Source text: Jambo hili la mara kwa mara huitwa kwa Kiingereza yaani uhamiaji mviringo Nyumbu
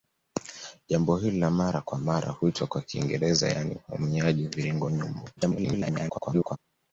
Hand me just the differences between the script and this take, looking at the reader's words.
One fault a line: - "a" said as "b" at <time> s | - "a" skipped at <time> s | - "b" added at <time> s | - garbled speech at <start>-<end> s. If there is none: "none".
- garbled speech at 5.4-6.6 s